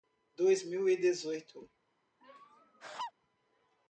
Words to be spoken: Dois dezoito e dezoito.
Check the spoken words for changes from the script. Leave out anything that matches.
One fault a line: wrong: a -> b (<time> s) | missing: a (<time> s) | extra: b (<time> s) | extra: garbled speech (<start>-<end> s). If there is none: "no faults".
wrong: dezoito -> mil (0.6 s)